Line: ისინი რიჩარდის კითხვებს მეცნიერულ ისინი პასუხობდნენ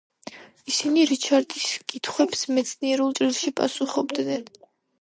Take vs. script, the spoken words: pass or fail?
fail